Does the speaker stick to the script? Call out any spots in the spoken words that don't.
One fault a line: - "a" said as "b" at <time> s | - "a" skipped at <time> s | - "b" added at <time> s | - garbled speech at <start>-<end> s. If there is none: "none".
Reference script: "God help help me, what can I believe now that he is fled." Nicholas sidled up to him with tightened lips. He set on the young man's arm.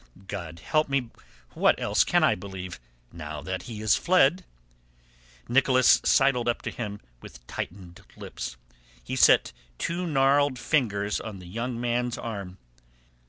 - "help" skipped at 0.9 s
- "else" added at 1.8 s
- "two gnarled fingers" added at 9.8 s